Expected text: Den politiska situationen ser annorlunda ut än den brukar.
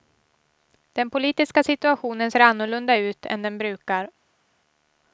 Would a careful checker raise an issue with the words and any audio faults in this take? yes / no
no